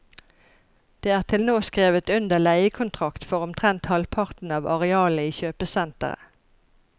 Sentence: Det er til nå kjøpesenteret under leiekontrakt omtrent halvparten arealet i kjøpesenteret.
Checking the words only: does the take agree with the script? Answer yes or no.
no